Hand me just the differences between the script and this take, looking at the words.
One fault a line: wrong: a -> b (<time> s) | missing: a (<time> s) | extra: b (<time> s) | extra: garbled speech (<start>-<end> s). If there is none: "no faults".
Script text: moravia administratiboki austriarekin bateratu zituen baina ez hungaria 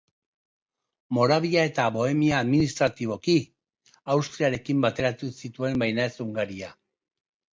extra: eta bohemia (1.7 s)